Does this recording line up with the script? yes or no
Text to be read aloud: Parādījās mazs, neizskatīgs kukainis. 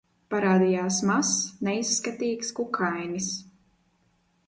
yes